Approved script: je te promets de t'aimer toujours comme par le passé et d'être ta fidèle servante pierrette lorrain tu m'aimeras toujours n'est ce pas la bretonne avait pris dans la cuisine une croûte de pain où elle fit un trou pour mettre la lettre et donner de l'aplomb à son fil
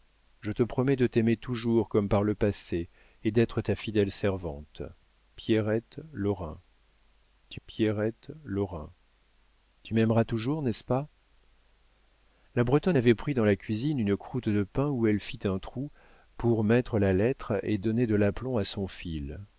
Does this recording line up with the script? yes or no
no